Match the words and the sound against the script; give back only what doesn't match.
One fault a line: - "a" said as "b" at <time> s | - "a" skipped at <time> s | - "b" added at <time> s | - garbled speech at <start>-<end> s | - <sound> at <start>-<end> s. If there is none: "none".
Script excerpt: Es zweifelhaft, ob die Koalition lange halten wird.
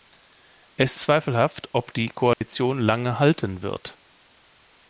- dropout at 2.3-2.4 s